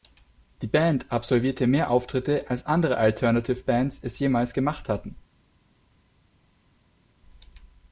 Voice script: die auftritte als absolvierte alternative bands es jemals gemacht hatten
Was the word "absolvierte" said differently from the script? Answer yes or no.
yes